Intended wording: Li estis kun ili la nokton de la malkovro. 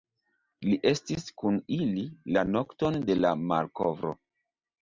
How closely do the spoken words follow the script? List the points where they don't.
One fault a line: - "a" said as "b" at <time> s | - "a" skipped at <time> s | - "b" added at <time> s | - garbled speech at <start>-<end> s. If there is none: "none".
none